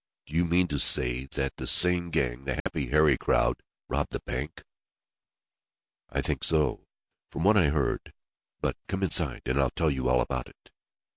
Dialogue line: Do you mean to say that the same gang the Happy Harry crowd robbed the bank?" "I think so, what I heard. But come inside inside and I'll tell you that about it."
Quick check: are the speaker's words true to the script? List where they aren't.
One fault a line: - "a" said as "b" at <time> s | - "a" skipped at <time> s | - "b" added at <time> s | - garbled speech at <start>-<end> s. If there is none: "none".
- "from" added at 7.3 s
- "inside" skipped at 9.4 s
- "that" said as "all" at 10.1 s